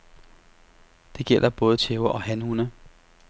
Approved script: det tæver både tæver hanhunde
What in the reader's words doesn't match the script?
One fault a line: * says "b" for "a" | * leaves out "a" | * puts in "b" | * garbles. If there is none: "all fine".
* says "gælder" for "tæver"
* puts in "og"